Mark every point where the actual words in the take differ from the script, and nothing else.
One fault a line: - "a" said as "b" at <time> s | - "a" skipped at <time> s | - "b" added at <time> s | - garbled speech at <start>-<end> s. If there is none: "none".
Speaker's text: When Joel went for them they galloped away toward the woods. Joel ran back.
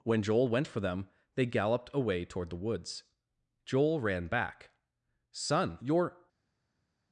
- "Son you're" added at 5.3 s